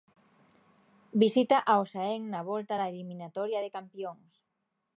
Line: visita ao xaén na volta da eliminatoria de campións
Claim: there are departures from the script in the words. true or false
false